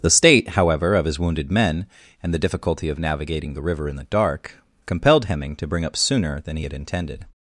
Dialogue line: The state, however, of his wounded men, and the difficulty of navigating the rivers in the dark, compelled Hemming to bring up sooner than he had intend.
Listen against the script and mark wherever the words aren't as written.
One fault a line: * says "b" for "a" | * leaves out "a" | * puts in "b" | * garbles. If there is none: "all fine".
* says "river" for "rivers"
* says "intended" for "intend"